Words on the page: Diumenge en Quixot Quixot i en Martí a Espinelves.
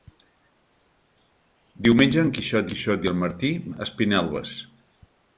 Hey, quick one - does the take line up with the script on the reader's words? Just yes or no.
yes